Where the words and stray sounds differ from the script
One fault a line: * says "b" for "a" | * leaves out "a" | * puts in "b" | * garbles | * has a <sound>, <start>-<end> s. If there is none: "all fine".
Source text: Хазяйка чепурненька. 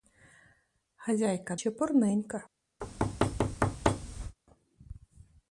* has a thud, 2.8-4.4 s